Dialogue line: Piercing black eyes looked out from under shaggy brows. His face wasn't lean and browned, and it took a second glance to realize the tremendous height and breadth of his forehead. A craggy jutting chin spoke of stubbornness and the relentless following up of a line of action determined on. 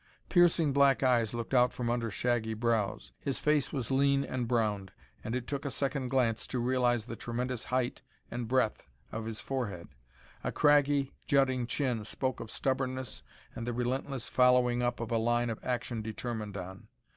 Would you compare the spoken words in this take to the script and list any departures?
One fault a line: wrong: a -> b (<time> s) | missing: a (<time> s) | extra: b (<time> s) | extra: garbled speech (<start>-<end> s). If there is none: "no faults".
wrong: wasn't -> was (3.7 s)